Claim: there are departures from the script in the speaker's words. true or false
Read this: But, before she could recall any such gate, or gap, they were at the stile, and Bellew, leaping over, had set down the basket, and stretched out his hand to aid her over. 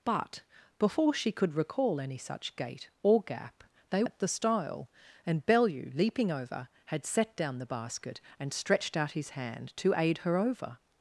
true